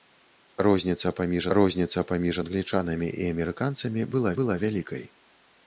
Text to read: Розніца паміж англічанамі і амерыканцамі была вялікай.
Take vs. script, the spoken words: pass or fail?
fail